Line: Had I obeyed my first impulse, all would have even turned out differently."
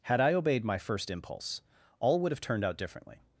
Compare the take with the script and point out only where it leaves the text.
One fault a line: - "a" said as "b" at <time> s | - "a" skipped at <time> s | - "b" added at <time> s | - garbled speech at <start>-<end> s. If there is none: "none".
- "even" skipped at 2.4 s